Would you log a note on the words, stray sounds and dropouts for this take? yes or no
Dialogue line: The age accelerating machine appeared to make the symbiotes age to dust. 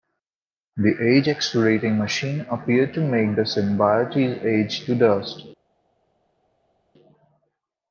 no